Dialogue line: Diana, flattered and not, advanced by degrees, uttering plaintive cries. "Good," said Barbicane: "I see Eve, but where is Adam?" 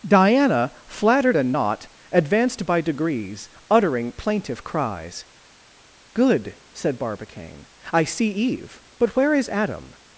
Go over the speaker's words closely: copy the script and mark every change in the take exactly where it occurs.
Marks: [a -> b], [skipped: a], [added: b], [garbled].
Diana, flattered and not, advanced by degrees, uttering plaintive cries. "Good," said Barbicane: "I see Eve, but where is Adam?"